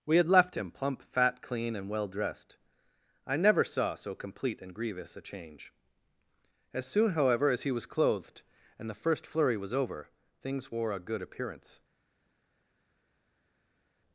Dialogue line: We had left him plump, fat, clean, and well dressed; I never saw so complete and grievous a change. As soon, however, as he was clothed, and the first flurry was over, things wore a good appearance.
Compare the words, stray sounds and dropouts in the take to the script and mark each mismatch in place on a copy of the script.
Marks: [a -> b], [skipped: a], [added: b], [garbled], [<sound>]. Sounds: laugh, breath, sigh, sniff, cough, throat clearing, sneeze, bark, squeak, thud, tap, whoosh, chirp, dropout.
We had left him plump, fat, clean, and well dressed; I never saw so complete and grievous a change. As soon, however, as he was clothed, and the first flurry was over, things wore a good appearance.